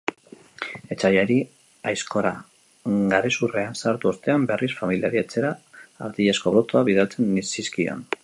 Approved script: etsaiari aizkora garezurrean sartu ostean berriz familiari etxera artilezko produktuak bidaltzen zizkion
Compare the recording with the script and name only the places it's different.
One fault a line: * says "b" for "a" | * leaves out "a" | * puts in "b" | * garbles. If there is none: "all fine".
all fine